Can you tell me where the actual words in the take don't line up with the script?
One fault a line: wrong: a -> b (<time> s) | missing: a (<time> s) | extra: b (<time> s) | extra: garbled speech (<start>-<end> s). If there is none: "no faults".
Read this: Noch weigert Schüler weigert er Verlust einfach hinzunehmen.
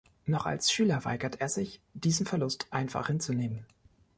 wrong: weigert -> als (0.5 s)
extra: sich diesen (1.5 s)